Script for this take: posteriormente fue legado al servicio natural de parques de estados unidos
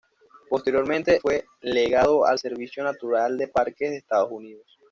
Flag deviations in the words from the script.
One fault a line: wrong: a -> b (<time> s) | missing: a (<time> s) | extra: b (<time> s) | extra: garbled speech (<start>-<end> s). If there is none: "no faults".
no faults